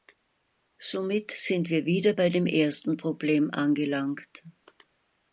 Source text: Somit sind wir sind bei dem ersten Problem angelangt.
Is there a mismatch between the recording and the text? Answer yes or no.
yes